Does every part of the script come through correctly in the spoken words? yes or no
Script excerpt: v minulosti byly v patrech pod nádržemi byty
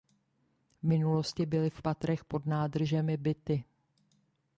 yes